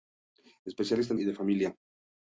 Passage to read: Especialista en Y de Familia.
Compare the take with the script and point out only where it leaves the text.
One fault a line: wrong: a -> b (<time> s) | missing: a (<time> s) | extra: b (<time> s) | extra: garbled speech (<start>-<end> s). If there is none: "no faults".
no faults